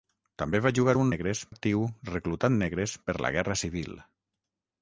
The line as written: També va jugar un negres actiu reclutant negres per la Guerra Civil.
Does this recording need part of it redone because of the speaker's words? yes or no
no